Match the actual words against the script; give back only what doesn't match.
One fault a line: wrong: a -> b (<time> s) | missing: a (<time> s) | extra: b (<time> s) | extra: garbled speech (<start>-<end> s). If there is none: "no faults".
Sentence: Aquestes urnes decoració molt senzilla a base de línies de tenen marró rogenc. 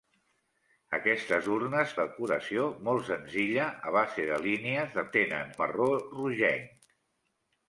no faults